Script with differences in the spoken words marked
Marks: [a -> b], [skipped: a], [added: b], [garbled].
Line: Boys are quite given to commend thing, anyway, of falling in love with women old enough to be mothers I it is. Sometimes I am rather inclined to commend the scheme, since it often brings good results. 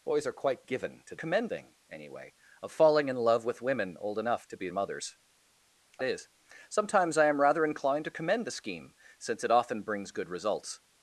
Boys are quite given to commend thing, anyway, of falling in love with women old enough to be mothers I it is. Sometimes I am rather inclined to commend the scheme, since it often brings good results.